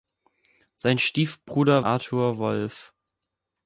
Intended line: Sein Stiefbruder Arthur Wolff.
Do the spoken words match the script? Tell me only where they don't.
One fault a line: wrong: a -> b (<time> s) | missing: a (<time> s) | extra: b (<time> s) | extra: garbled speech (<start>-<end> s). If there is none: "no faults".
no faults